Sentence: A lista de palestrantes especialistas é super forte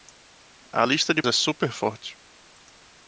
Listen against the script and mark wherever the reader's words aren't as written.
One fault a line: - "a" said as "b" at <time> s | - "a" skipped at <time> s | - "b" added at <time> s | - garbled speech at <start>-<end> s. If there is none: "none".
- "palestrantes especialistas" skipped at 1.2 s